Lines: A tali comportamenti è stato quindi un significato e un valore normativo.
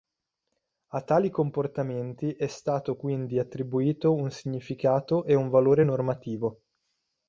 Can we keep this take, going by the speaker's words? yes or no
no